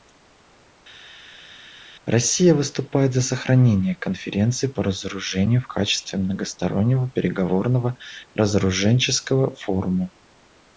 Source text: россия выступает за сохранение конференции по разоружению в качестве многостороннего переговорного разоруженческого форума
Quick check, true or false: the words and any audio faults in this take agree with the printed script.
true